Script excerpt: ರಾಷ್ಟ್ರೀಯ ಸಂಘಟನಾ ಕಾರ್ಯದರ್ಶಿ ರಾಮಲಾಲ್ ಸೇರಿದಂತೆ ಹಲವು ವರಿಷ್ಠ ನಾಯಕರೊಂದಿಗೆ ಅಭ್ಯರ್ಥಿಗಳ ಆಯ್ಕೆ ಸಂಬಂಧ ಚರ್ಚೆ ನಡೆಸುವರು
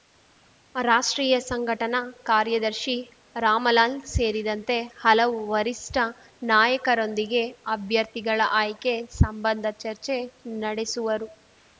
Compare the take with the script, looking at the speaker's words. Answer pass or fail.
pass